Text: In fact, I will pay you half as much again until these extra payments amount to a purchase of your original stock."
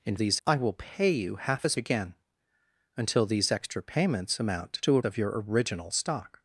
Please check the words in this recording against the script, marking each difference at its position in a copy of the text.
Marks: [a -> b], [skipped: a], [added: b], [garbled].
In [fact, -> these] I will pay you half as [skipped: much] again until these extra payments amount to a [skipped: purchase] of your original stock."